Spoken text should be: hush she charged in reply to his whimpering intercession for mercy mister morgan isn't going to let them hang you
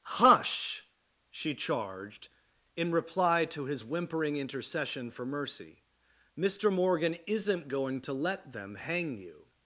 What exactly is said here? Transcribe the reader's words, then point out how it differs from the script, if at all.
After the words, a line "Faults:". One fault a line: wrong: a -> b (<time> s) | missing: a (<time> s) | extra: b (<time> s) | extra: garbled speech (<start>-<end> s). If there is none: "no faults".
hush she charged in reply to his whimpering intercession for mercy mister morgan isn't going to let them hang you
Faults:
no faults